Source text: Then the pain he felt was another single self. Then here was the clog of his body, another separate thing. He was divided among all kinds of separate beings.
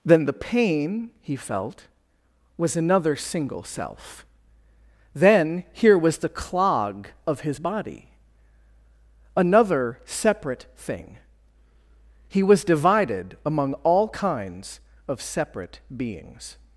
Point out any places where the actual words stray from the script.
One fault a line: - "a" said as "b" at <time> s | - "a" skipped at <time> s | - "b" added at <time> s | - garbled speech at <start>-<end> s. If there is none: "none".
none